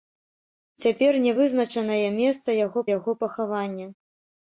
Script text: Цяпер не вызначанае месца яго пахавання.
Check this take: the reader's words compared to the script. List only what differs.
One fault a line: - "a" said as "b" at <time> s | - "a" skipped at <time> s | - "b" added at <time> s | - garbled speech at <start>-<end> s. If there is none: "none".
- "яго" added at 3.0 s